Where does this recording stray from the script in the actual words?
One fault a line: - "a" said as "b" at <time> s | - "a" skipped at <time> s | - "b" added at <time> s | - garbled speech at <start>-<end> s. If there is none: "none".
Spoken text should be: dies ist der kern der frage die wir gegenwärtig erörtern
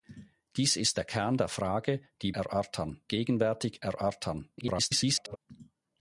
- "wir" said as "erörtern" at 2.3 s
- garbled speech at 4.6-5.4 s